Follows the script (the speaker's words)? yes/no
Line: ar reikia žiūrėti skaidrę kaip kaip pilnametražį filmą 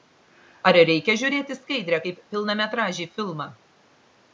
no